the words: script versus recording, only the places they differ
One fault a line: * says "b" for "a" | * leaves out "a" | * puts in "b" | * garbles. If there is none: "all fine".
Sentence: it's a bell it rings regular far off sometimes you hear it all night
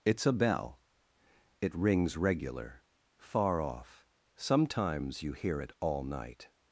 all fine